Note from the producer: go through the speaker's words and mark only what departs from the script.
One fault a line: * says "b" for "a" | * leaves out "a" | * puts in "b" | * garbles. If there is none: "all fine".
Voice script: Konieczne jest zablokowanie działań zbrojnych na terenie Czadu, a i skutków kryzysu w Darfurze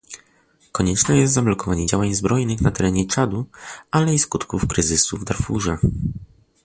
* says "ale" for "a"